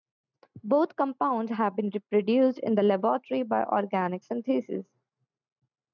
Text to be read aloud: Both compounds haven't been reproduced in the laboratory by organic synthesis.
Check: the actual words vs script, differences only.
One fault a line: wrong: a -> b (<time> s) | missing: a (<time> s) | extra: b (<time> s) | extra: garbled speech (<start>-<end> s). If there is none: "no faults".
wrong: haven't -> have (1.5 s)